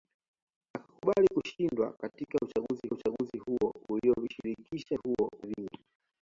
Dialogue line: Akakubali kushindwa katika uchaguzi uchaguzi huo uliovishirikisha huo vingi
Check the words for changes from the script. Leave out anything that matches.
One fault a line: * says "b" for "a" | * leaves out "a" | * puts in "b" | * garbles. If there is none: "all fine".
all fine